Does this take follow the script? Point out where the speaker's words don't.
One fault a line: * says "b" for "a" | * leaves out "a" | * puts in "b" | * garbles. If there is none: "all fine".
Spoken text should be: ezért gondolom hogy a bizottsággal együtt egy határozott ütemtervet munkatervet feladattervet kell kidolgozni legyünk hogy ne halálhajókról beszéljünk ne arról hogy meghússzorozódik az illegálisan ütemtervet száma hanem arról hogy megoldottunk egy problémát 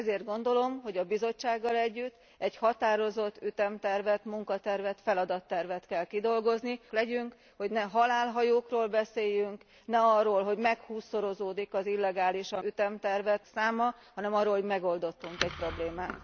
all fine